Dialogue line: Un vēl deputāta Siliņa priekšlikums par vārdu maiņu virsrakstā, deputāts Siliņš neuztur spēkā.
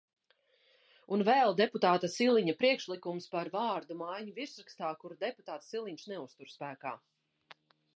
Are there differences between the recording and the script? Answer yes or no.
yes